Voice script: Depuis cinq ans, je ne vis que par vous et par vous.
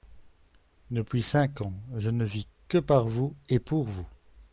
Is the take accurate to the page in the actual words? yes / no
no